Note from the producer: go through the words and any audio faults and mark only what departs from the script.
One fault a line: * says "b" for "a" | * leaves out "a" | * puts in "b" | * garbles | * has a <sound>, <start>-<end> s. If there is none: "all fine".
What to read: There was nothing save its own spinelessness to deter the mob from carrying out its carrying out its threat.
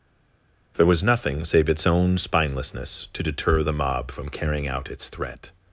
* leaves out "carrying out its"